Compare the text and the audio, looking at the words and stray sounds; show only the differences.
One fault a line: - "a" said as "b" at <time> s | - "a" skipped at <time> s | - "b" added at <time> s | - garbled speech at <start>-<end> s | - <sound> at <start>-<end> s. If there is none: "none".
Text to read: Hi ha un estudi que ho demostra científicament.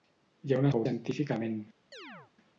- "estudi" skipped at 0.7 s
- "demostra" skipped at 0.8 s
- chirp at 1.9-2.3 s